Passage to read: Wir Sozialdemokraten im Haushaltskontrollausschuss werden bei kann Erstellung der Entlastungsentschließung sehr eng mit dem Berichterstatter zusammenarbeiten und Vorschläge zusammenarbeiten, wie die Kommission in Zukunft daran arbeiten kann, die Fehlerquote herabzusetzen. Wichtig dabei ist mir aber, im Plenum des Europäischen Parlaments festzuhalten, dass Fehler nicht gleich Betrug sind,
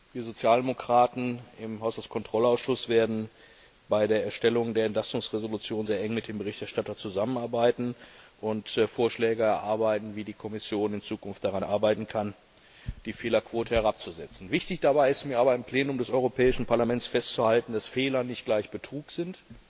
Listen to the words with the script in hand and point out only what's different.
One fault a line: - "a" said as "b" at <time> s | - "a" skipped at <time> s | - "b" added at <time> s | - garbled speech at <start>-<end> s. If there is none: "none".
- "kann" said as "der" at 4.1 s
- "zusammenarbeiten" said as "erarbeiten" at 9.4 s